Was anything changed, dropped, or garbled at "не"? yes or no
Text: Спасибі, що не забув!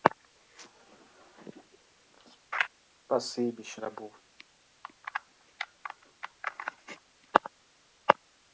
yes